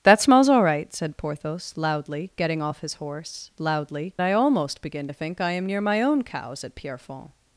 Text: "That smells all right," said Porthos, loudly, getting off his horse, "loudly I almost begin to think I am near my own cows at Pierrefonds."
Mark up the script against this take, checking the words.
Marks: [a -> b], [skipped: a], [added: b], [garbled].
"That smells all right," said Porthos, loudly, getting off his horse, "loudly I almost begin to think I am near my own cows at Pierrefonds."